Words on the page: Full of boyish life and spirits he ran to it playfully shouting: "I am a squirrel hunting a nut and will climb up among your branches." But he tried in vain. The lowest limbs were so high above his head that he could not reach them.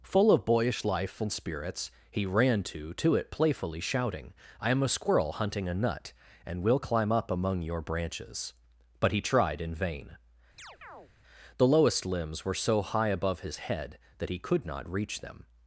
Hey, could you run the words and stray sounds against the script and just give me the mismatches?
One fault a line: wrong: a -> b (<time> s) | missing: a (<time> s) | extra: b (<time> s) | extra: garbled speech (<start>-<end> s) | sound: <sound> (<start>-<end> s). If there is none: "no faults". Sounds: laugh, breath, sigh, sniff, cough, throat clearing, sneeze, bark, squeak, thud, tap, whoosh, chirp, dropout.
extra: to (3.0 s)
sound: chirp (10.6-11.1 s)